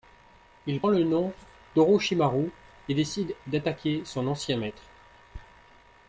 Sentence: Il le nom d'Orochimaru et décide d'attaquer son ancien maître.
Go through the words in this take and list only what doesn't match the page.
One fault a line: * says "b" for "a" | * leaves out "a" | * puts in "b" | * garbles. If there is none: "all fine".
all fine